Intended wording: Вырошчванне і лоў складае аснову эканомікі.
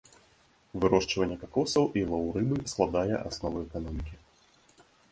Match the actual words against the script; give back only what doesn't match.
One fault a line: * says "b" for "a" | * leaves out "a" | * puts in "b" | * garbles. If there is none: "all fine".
* puts in "какосаў"
* puts in "рыбы"